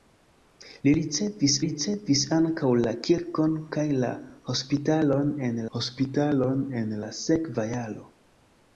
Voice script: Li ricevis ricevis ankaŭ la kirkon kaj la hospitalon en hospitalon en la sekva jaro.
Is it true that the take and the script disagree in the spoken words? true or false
false